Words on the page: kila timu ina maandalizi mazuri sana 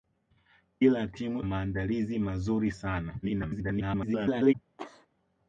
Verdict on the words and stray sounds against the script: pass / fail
fail